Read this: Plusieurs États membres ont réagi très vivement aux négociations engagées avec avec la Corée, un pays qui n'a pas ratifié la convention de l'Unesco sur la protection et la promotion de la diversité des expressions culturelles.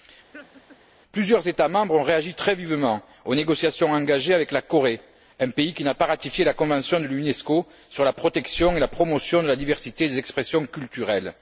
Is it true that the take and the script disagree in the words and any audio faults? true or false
true